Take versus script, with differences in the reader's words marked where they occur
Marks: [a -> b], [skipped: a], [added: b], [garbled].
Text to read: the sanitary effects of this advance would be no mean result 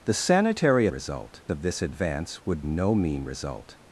the sanitary [effects -> result] of this advance would [skipped: be] no mean result